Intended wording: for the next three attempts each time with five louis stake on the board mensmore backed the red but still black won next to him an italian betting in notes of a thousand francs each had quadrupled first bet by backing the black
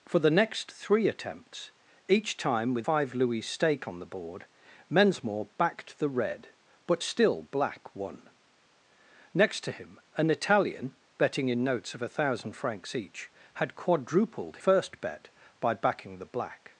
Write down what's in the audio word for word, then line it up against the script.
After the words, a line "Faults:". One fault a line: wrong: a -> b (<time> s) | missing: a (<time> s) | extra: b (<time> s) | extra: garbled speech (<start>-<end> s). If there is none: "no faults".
for the next three attempts each time with five louis stake on the board mensmore backed the red but still black won next to him an italian betting in notes of a thousand francs each had quadrupled first bet by backing the black
Faults:
no faults